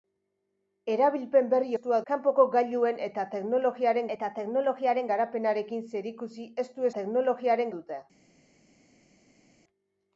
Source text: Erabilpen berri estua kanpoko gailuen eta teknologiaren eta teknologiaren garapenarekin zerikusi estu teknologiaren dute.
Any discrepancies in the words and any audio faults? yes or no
no